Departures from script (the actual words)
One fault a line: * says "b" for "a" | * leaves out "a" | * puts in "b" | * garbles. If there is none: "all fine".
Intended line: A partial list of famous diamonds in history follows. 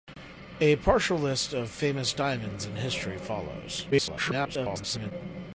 * garbles